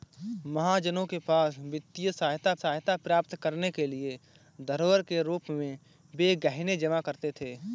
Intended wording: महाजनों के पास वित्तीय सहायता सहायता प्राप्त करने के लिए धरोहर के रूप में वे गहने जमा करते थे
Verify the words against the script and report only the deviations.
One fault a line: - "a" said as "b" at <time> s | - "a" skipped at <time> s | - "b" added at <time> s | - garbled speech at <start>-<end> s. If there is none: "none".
none